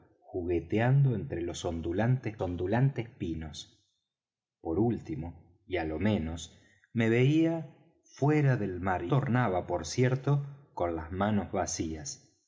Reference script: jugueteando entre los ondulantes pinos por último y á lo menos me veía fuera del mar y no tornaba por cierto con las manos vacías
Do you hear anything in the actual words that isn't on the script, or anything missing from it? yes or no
yes